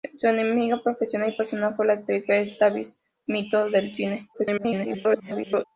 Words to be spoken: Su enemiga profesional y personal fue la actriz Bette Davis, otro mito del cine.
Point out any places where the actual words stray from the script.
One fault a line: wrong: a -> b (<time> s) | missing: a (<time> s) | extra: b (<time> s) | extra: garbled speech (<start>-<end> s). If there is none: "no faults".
missing: otro (3.0 s)
extra: garbled speech (4.3-5.6 s)